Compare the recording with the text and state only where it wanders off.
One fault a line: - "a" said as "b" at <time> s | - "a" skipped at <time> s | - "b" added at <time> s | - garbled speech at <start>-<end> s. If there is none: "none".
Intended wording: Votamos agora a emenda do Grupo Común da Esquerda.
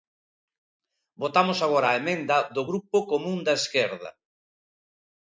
none